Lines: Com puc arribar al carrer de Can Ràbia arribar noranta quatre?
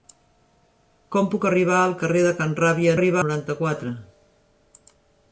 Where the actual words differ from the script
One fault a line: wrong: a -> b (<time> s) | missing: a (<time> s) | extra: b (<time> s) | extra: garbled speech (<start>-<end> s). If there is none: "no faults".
no faults